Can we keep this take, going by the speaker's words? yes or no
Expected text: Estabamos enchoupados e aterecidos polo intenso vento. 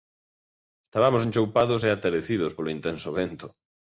yes